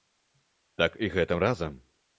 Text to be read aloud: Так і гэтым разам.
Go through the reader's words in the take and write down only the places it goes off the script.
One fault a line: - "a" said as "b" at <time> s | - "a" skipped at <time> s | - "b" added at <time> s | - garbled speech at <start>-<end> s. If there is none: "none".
none